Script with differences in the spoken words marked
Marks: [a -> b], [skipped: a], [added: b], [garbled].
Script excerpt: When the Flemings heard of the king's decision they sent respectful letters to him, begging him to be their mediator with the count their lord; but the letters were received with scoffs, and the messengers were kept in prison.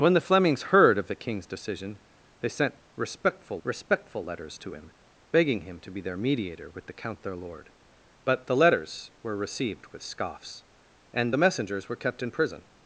When the Flemings heard of the king's decision they sent respectful [added: respectful] letters to him, begging him to be their mediator with the count their lord; but the letters were received with scoffs, and the messengers were kept in prison.